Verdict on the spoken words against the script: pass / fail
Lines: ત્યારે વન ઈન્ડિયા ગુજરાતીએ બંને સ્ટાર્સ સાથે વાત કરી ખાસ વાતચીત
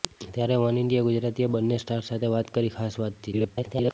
fail